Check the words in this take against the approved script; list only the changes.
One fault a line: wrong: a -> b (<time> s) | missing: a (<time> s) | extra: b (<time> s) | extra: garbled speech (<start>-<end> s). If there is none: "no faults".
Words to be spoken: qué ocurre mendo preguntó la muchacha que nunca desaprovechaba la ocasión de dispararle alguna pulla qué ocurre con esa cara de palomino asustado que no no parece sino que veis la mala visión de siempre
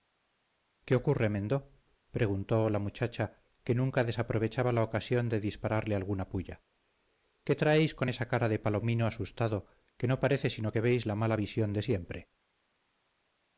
wrong: ocurre -> traéis (7.5 s)
missing: no (10.2 s)